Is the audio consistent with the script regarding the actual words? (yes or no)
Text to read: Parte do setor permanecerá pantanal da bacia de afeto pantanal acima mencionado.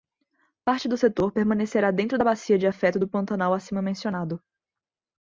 no